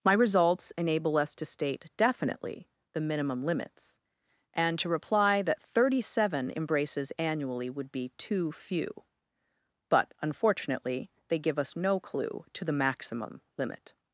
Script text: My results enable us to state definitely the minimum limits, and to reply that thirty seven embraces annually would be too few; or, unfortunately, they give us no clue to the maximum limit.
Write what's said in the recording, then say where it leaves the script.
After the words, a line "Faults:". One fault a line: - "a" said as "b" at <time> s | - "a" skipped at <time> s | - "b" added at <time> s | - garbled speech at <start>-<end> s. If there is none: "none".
My results enable us to state definitely the minimum limits, and to reply that thirty seven embraces annually would be too few; but, unfortunately, they give us no clue to the maximum limit.
Faults:
- "or" said as "but" at 9.9 s